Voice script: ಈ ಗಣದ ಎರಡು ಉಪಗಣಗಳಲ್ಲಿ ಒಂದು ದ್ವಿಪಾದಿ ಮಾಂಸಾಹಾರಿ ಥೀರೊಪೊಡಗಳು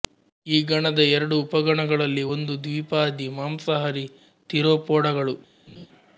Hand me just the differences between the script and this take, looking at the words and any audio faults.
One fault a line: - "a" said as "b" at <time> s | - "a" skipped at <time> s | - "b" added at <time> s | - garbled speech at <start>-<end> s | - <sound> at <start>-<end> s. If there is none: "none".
- laugh at 5.7-5.9 s